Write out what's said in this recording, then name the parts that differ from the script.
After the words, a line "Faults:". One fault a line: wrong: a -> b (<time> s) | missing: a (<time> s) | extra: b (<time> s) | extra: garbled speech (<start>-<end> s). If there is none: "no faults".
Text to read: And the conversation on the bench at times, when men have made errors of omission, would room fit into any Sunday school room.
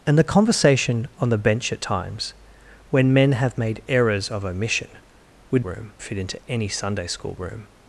And the conversation on the bench at times, when men have made errors of omission, would room fit into any Sunday school room.
Faults:
no faults